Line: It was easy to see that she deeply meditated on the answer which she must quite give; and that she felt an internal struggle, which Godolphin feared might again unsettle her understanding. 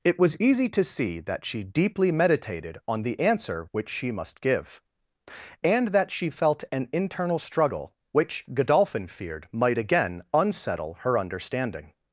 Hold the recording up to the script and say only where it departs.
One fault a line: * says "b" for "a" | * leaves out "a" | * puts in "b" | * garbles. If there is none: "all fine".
* leaves out "quite"